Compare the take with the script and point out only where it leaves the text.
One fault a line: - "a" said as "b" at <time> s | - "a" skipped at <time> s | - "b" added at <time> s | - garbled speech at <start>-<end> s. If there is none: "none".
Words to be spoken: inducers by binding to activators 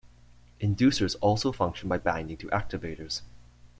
- "also function" added at 1.2 s